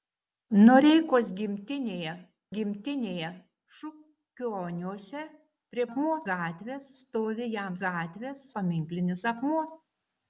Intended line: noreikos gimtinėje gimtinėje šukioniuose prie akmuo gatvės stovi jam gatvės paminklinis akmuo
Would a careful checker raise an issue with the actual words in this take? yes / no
no